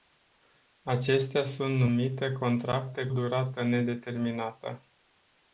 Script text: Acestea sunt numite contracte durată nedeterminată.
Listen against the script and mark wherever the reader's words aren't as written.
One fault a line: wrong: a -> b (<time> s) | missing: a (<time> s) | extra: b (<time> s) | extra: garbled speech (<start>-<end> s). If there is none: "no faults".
no faults